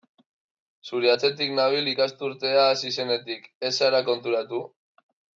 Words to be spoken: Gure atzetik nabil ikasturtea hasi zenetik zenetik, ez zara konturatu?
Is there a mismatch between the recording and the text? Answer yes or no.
yes